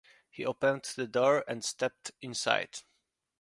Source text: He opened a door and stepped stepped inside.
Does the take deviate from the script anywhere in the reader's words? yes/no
yes